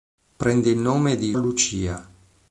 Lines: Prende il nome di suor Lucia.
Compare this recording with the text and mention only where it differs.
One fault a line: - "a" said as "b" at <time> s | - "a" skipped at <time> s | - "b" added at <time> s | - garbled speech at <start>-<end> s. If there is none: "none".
- "suor" skipped at 1.4 s